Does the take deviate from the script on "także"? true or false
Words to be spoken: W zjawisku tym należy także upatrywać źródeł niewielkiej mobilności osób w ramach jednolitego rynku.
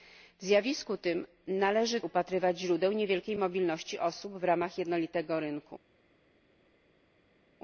true